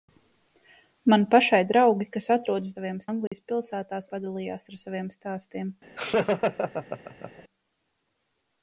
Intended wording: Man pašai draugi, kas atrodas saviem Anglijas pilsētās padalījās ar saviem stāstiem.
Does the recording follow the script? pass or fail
pass